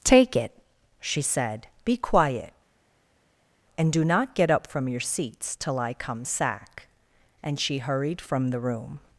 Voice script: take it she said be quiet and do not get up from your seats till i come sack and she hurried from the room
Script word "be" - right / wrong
right